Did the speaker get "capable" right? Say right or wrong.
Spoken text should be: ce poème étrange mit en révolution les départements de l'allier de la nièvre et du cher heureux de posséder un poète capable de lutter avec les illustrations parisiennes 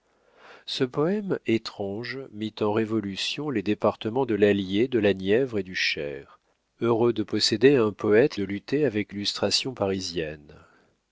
wrong